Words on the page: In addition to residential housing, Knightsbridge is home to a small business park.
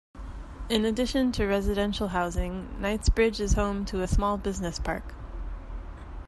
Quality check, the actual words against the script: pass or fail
pass